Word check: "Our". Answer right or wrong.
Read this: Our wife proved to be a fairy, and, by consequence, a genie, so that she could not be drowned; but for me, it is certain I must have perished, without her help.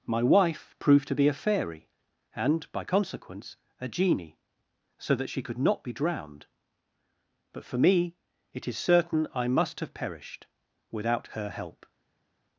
wrong